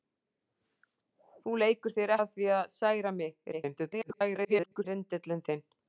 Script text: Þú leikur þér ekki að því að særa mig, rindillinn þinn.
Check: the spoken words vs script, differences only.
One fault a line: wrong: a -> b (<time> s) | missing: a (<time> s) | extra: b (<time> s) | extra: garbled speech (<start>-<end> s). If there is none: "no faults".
missing: ekki (2.1 s)
extra: garbled speech (3.5-4.8 s)